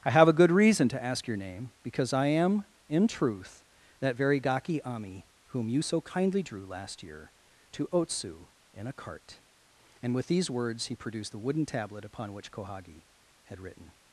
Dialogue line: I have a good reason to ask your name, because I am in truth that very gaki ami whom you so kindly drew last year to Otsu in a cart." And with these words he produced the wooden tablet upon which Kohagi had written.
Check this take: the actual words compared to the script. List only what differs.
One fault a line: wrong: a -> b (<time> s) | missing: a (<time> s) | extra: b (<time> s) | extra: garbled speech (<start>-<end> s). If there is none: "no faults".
no faults